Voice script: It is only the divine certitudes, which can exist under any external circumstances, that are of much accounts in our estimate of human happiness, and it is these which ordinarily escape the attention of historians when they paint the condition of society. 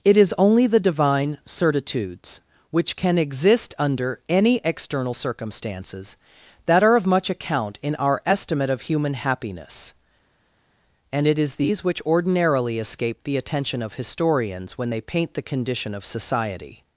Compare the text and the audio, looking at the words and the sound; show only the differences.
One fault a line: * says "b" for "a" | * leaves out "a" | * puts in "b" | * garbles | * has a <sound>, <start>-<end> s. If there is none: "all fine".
* says "account" for "accounts"